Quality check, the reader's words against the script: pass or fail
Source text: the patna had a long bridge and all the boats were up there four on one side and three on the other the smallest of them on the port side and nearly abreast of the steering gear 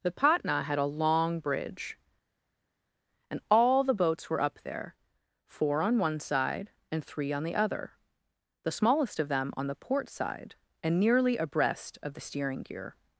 pass